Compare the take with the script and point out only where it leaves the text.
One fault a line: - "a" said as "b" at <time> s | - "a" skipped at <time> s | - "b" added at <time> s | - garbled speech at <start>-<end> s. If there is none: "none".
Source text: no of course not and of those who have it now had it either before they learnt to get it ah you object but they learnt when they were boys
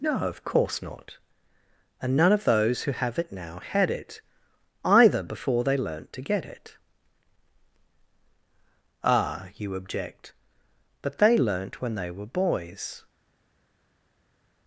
- "none" added at 2.2 s